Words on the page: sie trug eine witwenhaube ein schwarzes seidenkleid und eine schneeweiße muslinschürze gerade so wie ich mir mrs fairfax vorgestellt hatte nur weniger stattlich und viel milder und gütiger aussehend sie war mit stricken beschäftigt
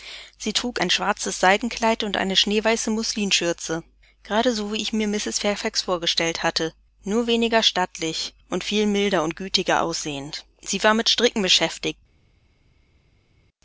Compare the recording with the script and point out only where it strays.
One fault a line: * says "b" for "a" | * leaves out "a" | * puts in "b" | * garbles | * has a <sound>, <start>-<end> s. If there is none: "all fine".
* leaves out "eine witwenhaube"